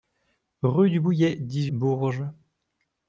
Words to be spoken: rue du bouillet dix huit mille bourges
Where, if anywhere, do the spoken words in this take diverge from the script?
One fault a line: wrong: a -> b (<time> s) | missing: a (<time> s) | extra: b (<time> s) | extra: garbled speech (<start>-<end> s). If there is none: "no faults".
missing: huit mille (1.7 s)